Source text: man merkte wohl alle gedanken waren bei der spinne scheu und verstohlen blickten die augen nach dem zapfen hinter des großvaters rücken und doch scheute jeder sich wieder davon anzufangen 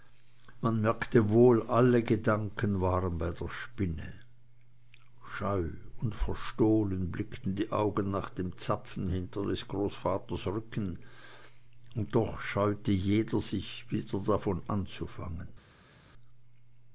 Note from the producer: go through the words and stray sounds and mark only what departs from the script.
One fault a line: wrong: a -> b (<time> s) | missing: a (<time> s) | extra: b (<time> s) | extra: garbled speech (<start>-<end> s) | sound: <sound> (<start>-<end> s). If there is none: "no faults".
no faults